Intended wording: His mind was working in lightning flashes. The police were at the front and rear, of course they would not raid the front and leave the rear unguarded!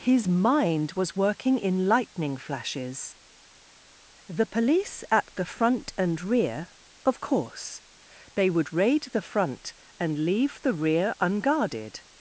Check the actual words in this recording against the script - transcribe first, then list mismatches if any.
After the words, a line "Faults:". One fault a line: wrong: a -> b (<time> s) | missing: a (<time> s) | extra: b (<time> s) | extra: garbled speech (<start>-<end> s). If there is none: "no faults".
His mind was working in lightning flashes. The police at the front and rear, of course they would raid the front and leave the rear unguarded!
Faults:
missing: were (5.0 s)
missing: not (8.7 s)